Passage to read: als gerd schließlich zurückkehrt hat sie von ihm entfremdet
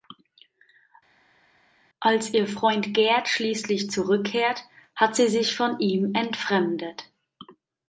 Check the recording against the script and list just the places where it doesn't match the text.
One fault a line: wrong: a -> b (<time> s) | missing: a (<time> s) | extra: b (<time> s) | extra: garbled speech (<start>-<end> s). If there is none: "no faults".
extra: ihr freund (2.3 s)
extra: sich (5.3 s)